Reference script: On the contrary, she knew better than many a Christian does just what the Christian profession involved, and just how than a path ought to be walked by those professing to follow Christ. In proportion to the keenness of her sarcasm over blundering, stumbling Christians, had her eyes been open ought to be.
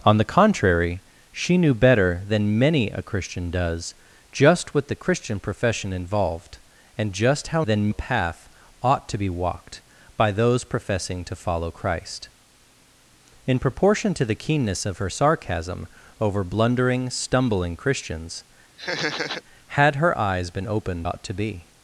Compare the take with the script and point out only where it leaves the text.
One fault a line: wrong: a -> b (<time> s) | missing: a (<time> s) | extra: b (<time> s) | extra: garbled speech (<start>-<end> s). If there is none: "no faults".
no faults